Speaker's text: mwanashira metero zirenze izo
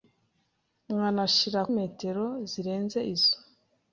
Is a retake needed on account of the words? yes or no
no